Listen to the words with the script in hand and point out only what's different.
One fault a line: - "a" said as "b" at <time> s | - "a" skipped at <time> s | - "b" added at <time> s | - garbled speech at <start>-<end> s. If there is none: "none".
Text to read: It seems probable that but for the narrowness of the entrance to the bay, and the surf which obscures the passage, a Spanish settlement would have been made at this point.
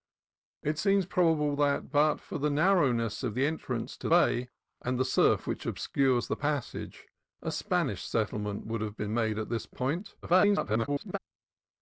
- "the" skipped at 4.1 s
- garbled speech at 10.2-11.2 s